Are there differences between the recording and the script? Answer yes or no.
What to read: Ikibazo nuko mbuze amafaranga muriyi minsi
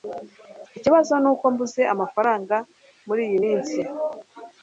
no